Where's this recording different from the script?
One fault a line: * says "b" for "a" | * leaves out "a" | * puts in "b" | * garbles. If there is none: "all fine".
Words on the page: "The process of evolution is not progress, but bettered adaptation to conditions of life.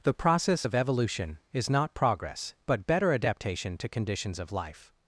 * says "better" for "bettered"